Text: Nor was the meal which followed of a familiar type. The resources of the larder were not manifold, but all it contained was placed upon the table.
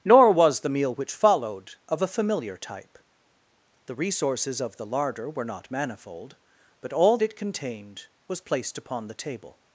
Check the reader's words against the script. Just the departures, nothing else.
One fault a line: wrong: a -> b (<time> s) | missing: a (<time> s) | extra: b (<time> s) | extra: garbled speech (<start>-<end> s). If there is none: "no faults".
no faults